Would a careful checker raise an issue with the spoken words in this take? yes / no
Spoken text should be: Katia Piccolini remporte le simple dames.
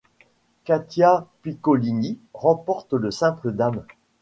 no